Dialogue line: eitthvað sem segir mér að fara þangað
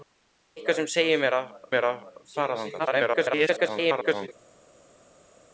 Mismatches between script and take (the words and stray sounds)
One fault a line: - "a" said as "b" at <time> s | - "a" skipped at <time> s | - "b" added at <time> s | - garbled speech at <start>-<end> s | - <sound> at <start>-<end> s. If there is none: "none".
- "mér að" added at 1.7 s
- garbled speech at 2.8-4.3 s